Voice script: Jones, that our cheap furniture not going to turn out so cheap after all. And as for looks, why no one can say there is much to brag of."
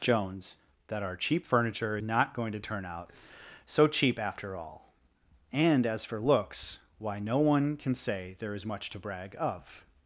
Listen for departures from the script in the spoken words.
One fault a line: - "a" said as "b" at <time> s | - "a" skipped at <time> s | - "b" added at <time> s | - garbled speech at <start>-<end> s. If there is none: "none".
none